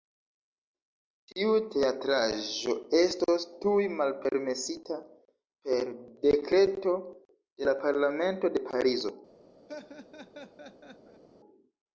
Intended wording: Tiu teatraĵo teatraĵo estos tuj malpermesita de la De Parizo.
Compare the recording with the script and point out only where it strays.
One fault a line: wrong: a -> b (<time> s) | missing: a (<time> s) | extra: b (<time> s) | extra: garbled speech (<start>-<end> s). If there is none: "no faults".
missing: teatraĵo (2.7 s)
extra: per Dekreto (5.7 s)
extra: Parlamento (7.8 s)